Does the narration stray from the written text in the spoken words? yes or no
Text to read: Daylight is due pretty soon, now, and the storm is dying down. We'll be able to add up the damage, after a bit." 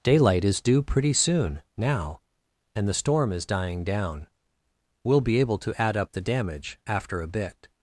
no